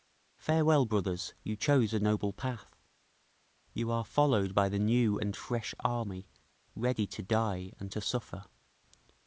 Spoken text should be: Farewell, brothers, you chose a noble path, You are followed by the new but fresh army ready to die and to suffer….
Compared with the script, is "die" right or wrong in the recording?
right